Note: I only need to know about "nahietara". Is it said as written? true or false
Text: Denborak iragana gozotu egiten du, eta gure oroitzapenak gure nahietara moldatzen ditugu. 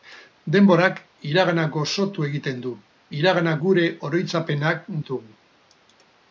false